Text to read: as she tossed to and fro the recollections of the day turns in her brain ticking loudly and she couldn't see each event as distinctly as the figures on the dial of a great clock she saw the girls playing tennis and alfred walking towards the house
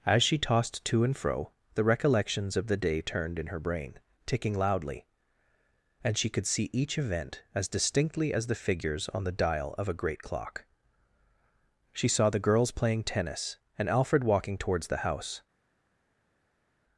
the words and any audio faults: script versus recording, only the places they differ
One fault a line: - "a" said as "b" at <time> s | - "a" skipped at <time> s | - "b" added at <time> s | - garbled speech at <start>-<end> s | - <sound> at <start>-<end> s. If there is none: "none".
- "turns" said as "turned" at 3.0 s
- "couldn't" said as "could" at 6.3 s